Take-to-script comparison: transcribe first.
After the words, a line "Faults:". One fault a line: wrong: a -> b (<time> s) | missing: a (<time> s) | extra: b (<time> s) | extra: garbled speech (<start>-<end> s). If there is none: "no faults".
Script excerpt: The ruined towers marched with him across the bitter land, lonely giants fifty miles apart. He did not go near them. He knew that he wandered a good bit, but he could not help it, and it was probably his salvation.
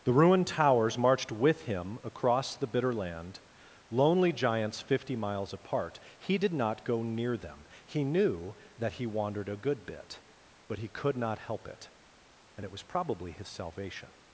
The ruined towers marched with him across the bitter land, lonely giants fifty miles apart. He did not go near them. He knew that he wandered a good bit, but he could not help it, and it was probably his salvation.
Faults:
no faults